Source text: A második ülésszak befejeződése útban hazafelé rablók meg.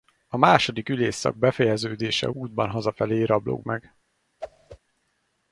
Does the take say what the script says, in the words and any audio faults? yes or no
no